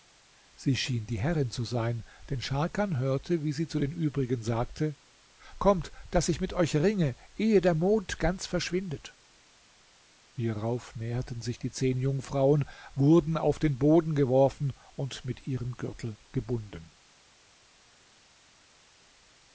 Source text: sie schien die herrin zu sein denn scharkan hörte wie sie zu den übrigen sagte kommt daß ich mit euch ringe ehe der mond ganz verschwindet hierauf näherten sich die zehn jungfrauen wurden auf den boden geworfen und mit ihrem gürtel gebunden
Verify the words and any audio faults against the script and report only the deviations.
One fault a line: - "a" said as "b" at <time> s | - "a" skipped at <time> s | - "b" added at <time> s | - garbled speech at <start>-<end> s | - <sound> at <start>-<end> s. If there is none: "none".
none